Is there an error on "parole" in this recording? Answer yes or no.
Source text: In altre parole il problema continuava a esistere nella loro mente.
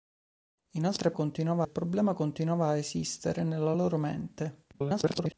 yes